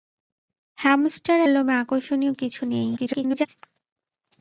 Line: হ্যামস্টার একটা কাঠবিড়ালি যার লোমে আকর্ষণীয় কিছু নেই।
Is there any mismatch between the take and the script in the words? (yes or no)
yes